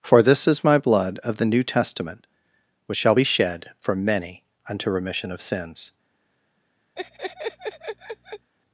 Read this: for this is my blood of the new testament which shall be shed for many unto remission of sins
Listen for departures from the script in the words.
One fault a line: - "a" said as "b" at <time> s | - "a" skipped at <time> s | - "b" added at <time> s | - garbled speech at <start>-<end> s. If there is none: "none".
none